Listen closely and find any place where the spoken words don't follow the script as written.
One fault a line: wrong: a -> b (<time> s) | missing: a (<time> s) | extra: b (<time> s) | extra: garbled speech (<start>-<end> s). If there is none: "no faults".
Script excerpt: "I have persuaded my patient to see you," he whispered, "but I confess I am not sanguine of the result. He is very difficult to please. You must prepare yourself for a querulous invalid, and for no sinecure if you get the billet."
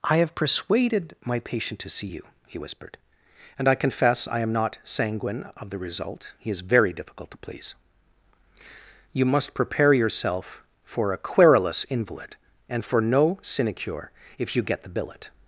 wrong: but -> and (3.6 s)